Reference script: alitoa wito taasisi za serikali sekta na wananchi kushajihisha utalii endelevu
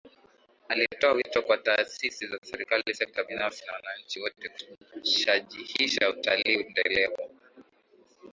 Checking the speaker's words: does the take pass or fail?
fail